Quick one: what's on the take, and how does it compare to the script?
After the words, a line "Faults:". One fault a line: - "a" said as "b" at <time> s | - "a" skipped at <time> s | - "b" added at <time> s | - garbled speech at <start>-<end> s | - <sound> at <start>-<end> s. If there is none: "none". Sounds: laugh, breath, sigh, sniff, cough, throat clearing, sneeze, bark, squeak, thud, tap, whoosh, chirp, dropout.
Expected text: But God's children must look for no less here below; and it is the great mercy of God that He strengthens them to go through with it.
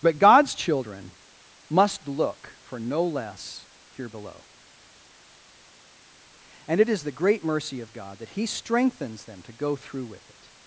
But God's children must look for no less here below; and it is the great mercy of God that He strengthens them to go through with it.
Faults:
none